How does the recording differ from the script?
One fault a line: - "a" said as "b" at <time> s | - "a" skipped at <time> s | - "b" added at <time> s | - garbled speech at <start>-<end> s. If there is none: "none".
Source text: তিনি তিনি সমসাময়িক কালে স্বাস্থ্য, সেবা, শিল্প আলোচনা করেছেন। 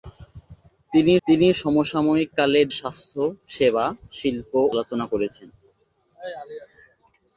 none